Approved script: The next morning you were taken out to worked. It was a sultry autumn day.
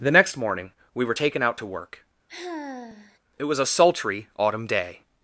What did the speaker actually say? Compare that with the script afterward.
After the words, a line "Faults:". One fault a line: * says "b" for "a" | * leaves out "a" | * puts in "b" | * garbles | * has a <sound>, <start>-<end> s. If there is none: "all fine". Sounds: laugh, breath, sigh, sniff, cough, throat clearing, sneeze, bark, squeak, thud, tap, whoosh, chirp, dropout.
The next morning we were taken out to work. It was a sultry autumn day.
Faults:
* says "we" for "you"
* says "work" for "worked"
* has a sigh, 2.3-3.2 s